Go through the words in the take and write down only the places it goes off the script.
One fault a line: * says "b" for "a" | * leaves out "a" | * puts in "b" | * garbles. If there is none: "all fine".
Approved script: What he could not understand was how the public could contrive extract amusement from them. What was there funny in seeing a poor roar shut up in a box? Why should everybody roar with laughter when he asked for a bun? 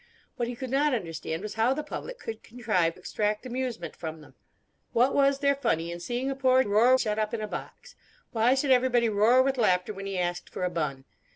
all fine